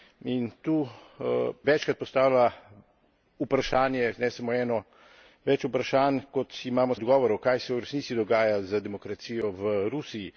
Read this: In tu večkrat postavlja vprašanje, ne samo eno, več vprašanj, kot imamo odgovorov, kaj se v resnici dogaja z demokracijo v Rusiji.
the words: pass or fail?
pass